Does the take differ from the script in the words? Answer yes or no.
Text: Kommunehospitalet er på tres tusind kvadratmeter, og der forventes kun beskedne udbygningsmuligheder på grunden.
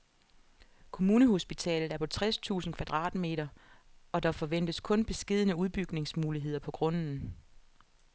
no